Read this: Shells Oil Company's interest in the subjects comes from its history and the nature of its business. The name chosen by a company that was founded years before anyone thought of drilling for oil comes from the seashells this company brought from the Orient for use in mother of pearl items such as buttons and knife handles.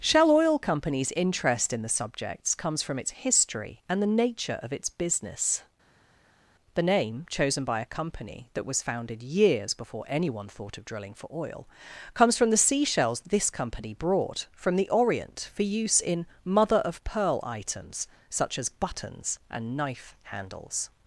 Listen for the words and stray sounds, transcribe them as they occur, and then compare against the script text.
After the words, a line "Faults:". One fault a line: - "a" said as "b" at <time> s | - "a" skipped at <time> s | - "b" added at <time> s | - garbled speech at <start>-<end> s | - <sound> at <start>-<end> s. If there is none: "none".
Shell Oil Company's interest in the subjects comes from its history and the nature of its business. The name chosen by a company that was founded years before anyone thought of drilling for oil comes from the seashells this company brought from the Orient for use in mother of pearl items such as buttons and knife handles.
Faults:
- "Shells" said as "Shell" at 0.0 s